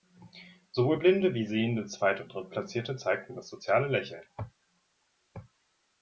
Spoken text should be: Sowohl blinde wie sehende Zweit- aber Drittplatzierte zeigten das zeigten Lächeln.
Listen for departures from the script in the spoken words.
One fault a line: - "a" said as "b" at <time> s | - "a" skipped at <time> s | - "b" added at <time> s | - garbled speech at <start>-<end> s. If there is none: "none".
- "aber" said as "und" at 2.2 s
- "zeigten" said as "soziale" at 3.5 s